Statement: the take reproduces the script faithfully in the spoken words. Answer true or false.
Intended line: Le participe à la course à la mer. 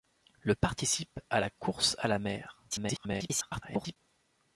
false